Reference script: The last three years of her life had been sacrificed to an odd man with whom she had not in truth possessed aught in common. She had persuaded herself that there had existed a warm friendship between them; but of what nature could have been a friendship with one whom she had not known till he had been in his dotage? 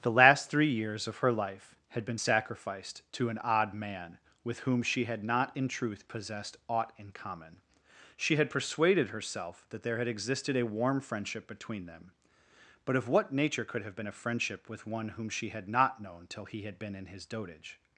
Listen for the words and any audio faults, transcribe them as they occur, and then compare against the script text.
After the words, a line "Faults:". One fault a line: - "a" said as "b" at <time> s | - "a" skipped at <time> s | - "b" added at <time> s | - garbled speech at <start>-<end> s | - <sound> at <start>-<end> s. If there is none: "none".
The last three years of her life had been sacrificed to an odd man with whom she had not in truth possessed aught in common. She had persuaded herself that there had existed a warm friendship between them; but of what nature could have been a friendship with one whom she had not known till he had been in his dotage?
Faults:
none